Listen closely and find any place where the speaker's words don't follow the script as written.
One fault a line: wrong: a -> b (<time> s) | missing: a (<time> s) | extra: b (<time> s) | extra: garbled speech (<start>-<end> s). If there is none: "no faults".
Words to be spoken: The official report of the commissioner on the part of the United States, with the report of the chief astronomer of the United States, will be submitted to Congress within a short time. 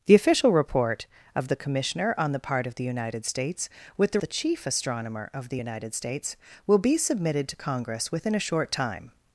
missing: report of (4.2 s)